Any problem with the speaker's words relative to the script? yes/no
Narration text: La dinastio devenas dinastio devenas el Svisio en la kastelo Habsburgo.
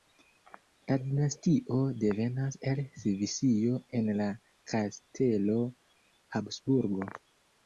yes